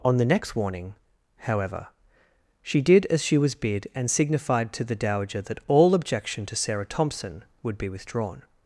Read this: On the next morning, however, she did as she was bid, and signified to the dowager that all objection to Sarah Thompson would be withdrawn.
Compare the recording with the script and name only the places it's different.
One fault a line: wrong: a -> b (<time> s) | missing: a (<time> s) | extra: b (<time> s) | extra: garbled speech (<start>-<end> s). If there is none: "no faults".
wrong: morning -> warning (0.6 s)